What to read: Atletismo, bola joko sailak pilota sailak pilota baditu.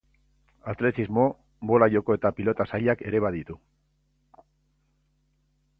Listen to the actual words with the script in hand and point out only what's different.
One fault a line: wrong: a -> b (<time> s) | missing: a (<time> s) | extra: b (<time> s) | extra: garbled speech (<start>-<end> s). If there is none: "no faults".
wrong: sailak -> eta (2.2 s)
wrong: pilota -> ere (3.1 s)